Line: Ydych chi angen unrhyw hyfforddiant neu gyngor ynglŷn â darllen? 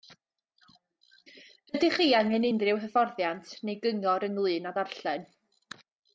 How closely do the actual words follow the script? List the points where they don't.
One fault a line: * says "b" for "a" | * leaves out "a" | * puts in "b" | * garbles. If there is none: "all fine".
all fine